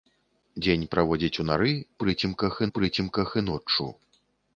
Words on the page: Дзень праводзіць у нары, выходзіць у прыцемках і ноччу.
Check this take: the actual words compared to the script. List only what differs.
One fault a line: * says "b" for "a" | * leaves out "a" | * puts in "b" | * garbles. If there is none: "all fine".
* says "прыцемках" for "выходзіць"